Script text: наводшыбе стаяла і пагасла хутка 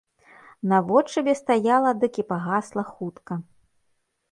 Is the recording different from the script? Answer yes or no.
yes